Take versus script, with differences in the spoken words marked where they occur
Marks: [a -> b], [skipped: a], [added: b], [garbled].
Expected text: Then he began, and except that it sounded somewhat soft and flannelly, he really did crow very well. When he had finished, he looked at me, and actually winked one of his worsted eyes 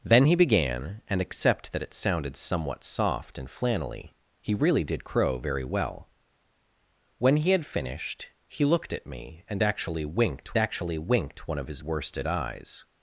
Then he began, and except that it sounded somewhat soft and flannelly, he really did crow very well. When he had finished, he looked at me, and actually winked [added: actually winked] one of his worsted eyes